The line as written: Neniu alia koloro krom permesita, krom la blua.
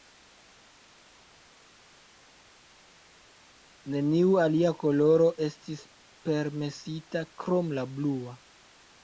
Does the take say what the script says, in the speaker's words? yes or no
no